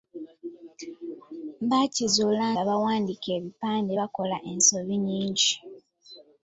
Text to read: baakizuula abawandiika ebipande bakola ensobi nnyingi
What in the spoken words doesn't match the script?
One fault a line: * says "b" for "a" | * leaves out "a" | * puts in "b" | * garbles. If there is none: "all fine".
all fine